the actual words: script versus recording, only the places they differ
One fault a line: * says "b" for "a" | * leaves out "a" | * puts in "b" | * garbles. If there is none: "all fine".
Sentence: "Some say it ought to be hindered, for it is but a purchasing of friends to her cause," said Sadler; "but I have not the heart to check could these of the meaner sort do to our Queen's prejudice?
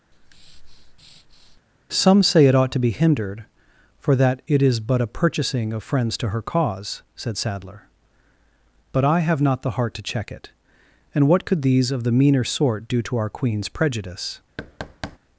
* puts in "that"
* puts in "it and what"